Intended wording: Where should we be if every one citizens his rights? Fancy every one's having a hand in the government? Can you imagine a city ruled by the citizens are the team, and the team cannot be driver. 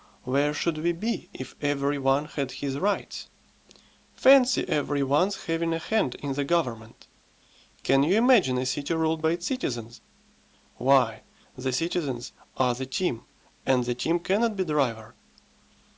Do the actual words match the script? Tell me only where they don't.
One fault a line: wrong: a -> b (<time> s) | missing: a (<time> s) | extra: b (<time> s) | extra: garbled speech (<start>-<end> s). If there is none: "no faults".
wrong: citizens -> had (2.2 s)
extra: its citizens Why (9.3 s)